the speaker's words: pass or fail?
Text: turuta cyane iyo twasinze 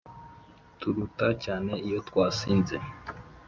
pass